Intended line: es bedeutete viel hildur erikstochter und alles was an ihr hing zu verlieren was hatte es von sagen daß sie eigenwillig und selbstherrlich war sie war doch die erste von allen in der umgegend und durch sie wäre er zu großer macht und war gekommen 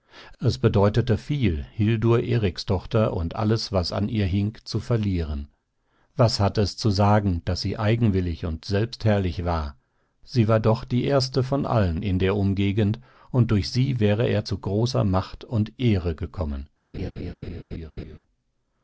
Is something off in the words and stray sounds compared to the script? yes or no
yes